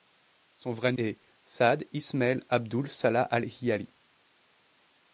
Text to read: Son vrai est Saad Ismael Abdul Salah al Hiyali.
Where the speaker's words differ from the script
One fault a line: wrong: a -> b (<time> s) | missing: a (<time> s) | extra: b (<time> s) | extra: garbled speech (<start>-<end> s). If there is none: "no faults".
no faults